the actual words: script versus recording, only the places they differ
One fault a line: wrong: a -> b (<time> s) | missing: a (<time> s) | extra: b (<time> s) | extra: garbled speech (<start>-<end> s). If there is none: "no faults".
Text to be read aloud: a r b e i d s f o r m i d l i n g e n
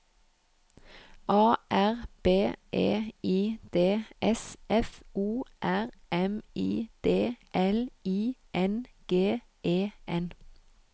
no faults